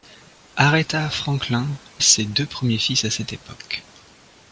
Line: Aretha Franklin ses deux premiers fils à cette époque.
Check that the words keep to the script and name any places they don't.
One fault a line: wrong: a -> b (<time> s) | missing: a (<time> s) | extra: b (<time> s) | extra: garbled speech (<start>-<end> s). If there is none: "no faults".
no faults